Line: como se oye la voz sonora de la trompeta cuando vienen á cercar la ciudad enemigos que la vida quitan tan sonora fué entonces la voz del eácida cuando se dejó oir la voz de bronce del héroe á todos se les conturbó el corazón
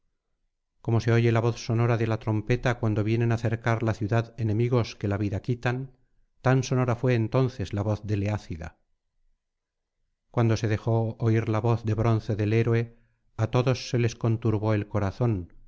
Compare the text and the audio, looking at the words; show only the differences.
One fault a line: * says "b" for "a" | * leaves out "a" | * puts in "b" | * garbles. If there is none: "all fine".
all fine